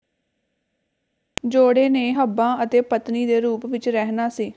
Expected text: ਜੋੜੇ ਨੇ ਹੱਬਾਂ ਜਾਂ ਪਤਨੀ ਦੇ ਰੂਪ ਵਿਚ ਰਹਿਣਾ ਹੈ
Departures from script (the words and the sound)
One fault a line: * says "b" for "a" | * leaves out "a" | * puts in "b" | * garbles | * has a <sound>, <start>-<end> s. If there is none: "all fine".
* says "ਅਤੇ" for "ਜਾਂ"
* says "ਸੀ" for "ਹੈ"